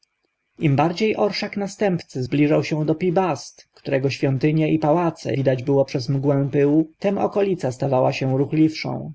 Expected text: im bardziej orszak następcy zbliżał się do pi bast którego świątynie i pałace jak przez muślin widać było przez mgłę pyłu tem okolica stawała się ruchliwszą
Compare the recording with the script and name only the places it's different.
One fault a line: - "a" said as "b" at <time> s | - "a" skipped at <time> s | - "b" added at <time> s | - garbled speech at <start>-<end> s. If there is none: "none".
- "jak przez muślin" skipped at 5.3 s